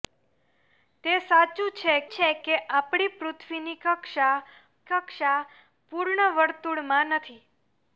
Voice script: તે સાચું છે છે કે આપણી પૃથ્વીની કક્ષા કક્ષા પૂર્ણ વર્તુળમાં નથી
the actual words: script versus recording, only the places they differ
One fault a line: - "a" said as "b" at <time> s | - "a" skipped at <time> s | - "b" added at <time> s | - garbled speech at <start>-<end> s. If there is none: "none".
none